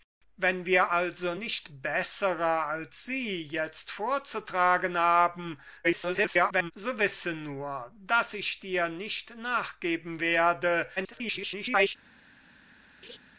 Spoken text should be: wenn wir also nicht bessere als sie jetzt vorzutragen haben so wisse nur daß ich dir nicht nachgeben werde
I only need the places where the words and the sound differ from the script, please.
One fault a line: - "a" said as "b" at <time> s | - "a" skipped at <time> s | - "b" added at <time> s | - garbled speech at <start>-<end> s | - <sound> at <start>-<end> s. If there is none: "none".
- garbled speech at 5.8-6.7 s
- garbled speech at 11.0-12.0 s
- laugh at 13.0-13.2 s